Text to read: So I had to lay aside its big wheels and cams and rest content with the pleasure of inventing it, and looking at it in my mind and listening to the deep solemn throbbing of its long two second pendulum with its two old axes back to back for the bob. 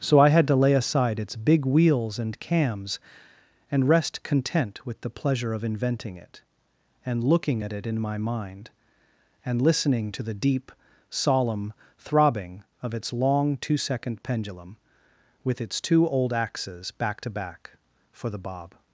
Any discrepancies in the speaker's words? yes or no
no